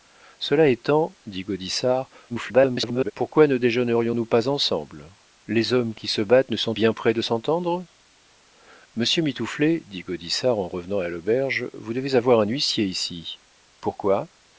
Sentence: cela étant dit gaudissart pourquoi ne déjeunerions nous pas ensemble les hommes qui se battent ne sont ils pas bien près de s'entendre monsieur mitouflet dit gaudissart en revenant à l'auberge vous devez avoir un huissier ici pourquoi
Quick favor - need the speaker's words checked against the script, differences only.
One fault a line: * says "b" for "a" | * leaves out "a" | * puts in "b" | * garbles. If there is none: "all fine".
* garbles
* leaves out "ils pas"